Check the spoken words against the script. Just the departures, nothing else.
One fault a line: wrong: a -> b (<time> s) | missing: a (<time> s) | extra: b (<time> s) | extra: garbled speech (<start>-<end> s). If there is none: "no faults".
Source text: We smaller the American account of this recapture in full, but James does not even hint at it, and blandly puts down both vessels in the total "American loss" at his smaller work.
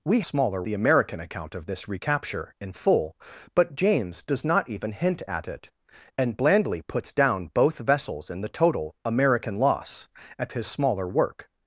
no faults